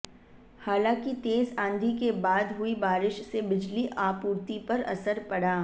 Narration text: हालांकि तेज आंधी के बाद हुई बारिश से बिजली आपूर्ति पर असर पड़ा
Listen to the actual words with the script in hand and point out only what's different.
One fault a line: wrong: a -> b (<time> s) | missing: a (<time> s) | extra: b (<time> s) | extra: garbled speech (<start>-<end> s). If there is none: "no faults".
no faults